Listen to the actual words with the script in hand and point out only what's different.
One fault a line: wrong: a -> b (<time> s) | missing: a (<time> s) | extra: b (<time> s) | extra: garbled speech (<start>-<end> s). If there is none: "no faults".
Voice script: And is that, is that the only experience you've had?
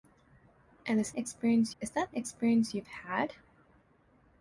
wrong: that -> experience (1.2 s)
missing: the only (2.1 s)